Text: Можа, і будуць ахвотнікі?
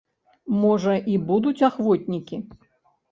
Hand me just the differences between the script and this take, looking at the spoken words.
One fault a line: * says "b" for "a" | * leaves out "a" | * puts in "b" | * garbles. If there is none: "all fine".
all fine